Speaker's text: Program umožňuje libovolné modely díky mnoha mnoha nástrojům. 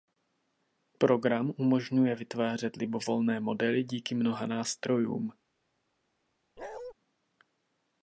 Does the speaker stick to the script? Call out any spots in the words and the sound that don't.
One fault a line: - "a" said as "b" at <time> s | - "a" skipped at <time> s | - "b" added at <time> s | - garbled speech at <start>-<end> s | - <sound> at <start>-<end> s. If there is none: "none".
- "vytvářet" added at 2.1 s
- "mnoha" skipped at 4.5 s
- bark at 6.6-6.9 s